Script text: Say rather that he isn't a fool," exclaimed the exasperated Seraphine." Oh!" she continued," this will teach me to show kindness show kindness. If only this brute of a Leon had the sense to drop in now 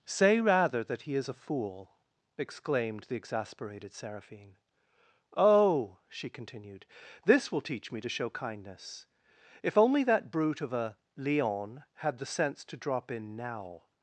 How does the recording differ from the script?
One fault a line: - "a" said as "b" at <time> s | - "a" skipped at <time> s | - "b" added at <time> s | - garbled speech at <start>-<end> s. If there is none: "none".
- "isn't" said as "is" at 1.1 s
- "show kindness" skipped at 9.1 s
- "this" said as "that" at 10.1 s